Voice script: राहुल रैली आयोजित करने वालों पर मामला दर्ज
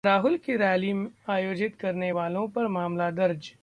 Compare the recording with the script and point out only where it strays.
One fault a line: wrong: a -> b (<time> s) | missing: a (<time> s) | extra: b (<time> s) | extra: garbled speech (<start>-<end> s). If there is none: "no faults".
extra: की (0.4 s)